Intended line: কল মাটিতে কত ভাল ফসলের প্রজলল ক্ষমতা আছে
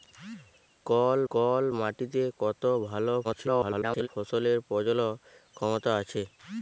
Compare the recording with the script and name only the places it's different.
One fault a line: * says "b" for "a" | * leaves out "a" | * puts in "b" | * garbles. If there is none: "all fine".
* puts in "কল"
* garbles